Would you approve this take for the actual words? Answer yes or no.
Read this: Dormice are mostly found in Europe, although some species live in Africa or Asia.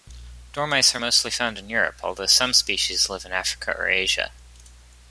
yes